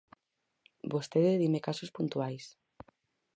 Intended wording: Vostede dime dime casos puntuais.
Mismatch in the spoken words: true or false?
true